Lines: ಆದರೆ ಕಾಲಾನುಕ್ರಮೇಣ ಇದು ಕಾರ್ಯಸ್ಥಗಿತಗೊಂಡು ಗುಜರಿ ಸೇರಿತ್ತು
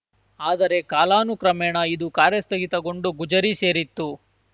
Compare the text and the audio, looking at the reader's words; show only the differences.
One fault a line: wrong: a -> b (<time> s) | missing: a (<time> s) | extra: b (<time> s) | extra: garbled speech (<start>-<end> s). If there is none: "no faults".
no faults